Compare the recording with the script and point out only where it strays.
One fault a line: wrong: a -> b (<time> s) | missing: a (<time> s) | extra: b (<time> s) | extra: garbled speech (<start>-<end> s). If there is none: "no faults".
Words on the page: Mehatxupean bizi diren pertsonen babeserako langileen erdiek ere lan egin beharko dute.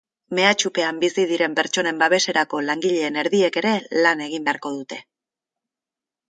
no faults